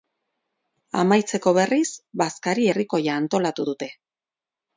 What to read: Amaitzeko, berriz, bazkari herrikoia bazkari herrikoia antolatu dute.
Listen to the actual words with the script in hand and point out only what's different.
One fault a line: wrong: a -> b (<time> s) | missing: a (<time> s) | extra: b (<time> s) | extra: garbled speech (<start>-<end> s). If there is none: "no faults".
missing: bazkari herrikoia (3.2 s)